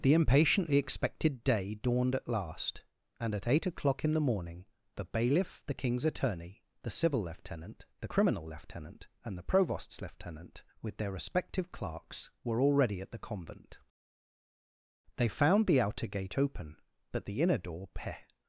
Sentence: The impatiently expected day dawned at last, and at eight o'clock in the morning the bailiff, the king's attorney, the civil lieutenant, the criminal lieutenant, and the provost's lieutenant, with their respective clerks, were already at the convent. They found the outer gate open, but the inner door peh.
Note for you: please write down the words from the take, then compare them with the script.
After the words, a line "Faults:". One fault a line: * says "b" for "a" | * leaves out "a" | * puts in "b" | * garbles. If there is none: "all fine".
The impatiently expected day dawned at last, and at eight o'clock in the morning the bailiff, the king's attorney, the civil lieutenant, the criminal lieutenant, and the provost's lieutenant, with their respective clerks, were already at the convent. They found the outer gate open, but the inner door peh.
Faults:
all fine